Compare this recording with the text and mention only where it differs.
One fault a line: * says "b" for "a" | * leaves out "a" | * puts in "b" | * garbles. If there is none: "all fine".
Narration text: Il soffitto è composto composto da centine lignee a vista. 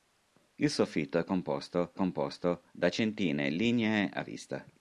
all fine